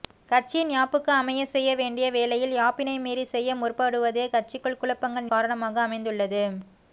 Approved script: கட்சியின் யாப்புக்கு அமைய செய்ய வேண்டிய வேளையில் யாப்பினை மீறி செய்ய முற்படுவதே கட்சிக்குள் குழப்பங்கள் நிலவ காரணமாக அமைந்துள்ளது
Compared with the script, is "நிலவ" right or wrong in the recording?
wrong